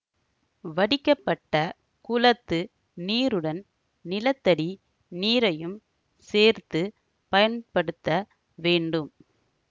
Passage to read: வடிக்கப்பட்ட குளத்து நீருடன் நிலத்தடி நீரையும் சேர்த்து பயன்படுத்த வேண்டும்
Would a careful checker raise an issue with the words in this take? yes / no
no